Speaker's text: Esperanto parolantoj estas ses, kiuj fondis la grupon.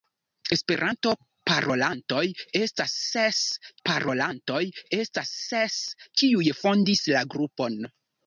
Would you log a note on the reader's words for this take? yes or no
yes